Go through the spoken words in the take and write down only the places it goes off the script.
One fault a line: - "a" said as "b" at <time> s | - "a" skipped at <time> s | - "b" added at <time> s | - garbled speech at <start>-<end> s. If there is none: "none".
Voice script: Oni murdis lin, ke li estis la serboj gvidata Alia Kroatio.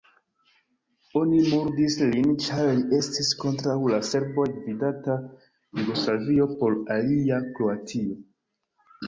- "ke" said as "ĉar" at 2.5 s
- "kontraŭ" added at 3.4 s
- "Jugoslavio por" added at 5.8 s